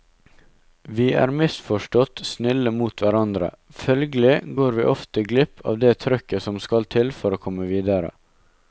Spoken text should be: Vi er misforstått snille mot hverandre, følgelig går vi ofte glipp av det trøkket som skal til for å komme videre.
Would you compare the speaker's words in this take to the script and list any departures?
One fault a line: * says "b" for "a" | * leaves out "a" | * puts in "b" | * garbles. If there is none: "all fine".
all fine